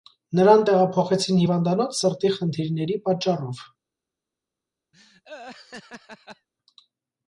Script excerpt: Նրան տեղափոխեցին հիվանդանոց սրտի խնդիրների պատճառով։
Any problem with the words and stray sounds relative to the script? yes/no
yes